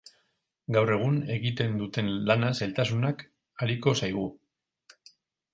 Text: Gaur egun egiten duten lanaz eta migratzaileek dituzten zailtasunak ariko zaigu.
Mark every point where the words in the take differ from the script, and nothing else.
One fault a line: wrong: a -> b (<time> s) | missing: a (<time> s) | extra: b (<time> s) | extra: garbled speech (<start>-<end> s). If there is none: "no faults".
missing: eta migratzaileek dituzten (2.5 s)